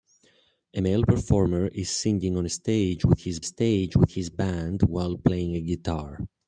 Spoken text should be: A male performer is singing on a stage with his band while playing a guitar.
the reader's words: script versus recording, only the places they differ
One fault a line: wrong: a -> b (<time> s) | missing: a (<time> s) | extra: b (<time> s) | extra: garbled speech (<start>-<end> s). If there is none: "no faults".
extra: stage with his (3.4 s)